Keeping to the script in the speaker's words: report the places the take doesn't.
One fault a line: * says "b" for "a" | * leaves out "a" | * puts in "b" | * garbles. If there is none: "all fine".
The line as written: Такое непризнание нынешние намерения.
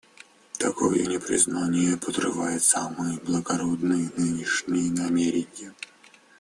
* puts in "подрывает самые благородные"